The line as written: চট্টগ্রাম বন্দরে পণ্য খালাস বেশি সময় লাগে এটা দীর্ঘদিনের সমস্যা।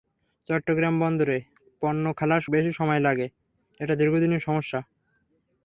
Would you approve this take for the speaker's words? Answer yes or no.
yes